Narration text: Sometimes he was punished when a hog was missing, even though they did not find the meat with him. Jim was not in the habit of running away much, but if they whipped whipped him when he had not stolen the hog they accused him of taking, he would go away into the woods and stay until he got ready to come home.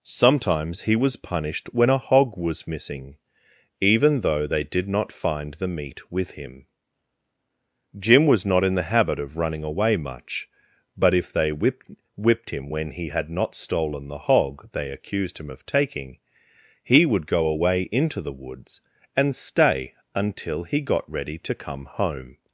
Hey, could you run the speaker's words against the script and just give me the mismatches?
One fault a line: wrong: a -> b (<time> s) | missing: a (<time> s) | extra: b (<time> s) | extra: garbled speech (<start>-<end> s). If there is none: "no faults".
no faults